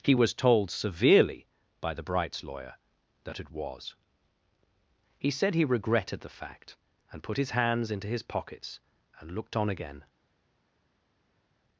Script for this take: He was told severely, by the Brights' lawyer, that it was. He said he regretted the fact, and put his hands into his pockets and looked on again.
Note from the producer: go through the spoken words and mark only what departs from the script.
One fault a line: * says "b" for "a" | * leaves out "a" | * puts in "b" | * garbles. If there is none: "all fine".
all fine